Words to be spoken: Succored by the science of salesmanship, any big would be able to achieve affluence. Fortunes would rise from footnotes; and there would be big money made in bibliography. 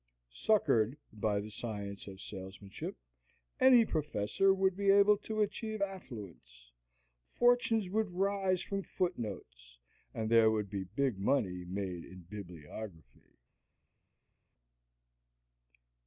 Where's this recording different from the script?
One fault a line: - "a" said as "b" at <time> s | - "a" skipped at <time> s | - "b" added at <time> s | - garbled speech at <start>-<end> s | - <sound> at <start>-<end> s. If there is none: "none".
- "big" said as "professor" at 3.9 s